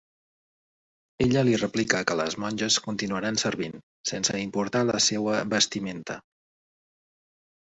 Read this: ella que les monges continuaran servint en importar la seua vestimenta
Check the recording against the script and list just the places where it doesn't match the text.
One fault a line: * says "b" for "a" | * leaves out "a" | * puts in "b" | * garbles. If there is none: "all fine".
* puts in "li replica"
* says "sense" for "en"